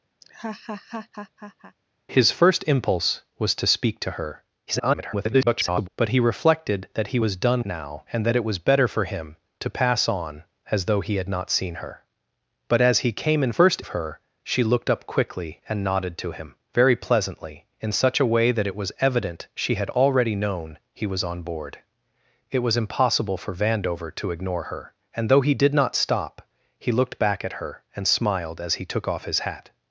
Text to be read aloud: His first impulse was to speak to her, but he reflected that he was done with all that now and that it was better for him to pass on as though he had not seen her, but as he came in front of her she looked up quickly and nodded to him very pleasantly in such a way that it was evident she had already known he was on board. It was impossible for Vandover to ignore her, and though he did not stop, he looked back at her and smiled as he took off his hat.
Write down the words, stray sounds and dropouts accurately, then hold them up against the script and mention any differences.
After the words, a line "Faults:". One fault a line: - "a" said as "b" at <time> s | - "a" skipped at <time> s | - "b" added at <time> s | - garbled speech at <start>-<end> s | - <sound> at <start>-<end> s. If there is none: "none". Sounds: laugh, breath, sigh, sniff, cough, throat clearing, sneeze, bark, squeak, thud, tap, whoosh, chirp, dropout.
His first impulse was to speak to her, [garbled] but he reflected that he was done now and that it was better for him to pass on as though he had not seen her, but as he came in first of her she looked up quickly and nodded to him very pleasantly in such a way that it was evident she had already known he was on board. It was impossible for Vandover to ignore her, and though he did not stop, he looked back at her and smiled as he took off his hat.
Faults:
- laugh at 0.2-1.8 s
- garbled speech at 4.7-5.9 s
- "with all that" skipped at 7.6 s
- "front" said as "first" at 13.5 s